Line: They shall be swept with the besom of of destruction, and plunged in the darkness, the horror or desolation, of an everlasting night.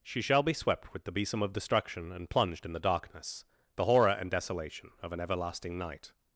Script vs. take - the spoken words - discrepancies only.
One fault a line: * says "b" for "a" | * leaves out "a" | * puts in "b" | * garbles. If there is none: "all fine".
* says "She" for "They"
* leaves out "of"
* says "and" for "or"